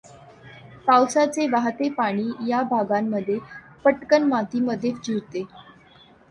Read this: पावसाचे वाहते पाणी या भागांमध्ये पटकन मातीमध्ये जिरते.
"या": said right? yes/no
yes